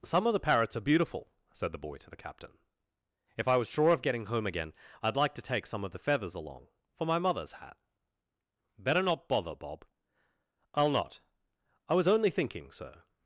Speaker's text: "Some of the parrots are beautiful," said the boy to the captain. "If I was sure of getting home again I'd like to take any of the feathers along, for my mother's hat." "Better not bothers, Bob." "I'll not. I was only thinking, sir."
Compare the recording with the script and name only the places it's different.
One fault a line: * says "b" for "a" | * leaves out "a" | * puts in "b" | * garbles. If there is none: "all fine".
* says "some" for "any"
* says "bother" for "bothers"